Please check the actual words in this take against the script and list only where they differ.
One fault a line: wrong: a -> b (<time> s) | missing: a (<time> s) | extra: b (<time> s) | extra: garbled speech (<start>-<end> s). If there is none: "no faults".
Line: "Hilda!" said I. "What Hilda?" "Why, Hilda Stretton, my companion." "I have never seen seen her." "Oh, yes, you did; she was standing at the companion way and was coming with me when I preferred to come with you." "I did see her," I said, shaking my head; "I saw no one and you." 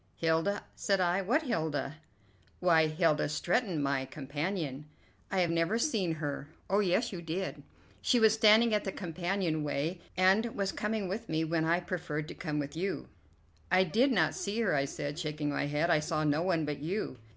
missing: seen (6.1 s)
extra: not (14.1 s)
wrong: and -> but (16.6 s)